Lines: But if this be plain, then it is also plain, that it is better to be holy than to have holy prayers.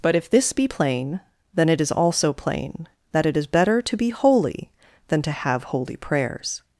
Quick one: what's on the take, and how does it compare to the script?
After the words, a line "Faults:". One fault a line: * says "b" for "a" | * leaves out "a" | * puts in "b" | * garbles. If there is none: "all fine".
But if this be plain, then it is also plain, that it is better to be holy than to have holy prayers.
Faults:
all fine